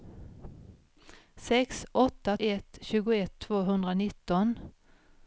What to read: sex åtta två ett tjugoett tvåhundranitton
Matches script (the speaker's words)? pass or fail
fail